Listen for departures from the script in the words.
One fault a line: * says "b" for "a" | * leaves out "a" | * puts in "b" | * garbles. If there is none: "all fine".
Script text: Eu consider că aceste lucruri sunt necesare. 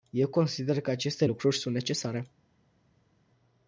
all fine